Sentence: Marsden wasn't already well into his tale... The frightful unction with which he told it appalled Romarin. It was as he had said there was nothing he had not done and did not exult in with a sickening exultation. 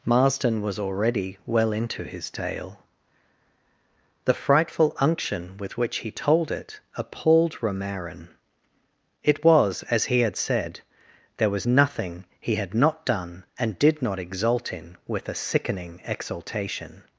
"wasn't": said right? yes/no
no